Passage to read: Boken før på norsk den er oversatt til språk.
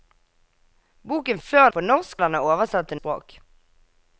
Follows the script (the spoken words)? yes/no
yes